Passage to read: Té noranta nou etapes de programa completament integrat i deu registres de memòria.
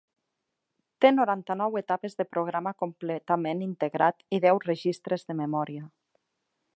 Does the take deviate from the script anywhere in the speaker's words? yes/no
no